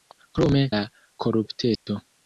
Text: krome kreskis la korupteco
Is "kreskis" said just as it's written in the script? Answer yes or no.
no